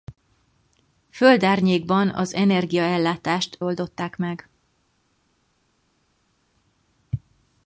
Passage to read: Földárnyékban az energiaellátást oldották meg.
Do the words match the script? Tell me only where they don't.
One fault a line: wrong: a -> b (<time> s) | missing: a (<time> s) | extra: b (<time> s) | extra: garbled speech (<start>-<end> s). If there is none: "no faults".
no faults